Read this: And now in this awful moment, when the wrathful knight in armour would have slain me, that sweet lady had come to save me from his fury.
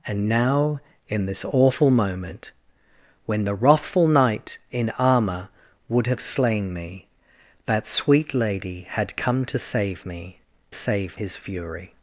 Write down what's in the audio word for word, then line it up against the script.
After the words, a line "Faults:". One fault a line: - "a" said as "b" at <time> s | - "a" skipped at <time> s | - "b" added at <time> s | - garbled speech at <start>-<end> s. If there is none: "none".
And now in this awful moment, when the wrathful knight in armour would have slain me, that sweet lady had come to save me save his fury.
Faults:
- "from" said as "save" at 10.7 s